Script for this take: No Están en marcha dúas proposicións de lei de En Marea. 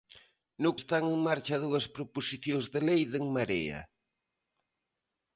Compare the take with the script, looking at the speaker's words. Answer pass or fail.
pass